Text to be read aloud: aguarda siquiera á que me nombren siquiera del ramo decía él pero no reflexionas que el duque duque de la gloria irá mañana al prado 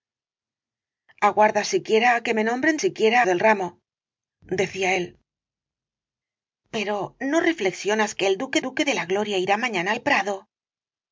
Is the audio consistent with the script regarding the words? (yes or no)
yes